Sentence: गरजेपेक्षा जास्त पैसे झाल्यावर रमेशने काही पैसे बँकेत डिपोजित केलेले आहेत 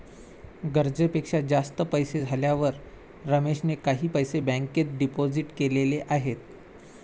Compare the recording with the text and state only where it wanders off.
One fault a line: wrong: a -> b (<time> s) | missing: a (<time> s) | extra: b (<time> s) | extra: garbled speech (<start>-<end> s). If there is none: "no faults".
no faults